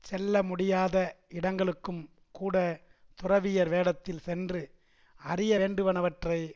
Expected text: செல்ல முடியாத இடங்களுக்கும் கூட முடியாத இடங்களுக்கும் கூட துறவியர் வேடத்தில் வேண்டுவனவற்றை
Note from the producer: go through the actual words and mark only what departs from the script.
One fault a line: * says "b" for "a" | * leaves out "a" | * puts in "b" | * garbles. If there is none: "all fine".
* says "துறவியர் வேடத்தில் சென்று அறிய" for "முடியாத இடங்களுக்கும் கூட துறவியர் வேடத்தில்"